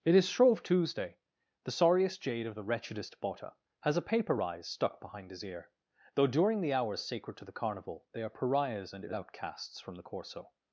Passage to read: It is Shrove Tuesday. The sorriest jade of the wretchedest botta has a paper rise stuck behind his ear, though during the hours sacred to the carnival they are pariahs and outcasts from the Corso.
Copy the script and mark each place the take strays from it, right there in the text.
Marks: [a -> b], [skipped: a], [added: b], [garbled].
It is Shrove Tuesday. The sorriest jade of the wretchedest botta has a paper rise stuck behind his ear, though during the hours sacred to the carnival they are pariahs and outcasts from the Corso.